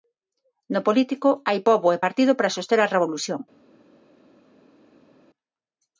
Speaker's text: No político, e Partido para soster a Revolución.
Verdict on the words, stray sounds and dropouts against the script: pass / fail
fail